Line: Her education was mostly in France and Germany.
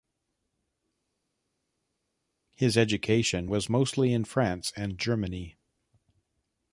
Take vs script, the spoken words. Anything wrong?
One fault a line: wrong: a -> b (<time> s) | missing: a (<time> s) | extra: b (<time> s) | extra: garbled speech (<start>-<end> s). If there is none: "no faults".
wrong: Her -> His (2.6 s)